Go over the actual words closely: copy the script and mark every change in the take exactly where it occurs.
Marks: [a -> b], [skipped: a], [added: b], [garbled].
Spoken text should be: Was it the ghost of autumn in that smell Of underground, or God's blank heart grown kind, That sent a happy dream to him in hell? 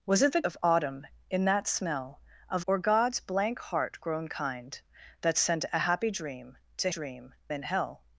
Was it the [skipped: ghost] of autumn in that smell Of [skipped: underground,] or God's blank heart grown kind, That sent a happy dream to [him -> dream] in hell?